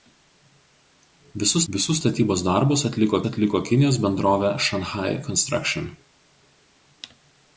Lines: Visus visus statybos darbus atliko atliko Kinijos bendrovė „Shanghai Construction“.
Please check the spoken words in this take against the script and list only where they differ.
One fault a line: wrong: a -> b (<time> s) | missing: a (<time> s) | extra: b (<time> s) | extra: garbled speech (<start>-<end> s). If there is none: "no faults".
no faults